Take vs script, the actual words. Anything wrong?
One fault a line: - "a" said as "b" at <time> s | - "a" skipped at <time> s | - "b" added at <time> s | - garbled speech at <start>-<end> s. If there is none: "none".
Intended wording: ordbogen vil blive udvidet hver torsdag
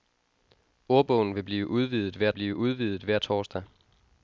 - "blive udvidet hver" added at 2.3 s